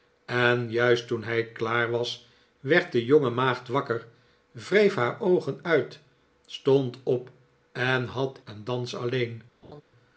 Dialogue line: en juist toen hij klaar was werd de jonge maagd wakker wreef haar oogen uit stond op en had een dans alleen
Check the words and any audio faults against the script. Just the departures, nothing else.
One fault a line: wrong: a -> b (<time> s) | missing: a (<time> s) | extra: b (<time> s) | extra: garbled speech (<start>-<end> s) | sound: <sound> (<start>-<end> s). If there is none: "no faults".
sound: laugh (9.6-9.8 s)